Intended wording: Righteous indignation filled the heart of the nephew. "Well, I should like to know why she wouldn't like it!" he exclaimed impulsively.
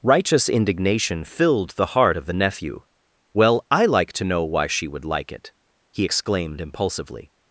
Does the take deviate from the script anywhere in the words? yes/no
yes